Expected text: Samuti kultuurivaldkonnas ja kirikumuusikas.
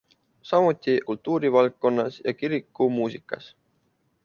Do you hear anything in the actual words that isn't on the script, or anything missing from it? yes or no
no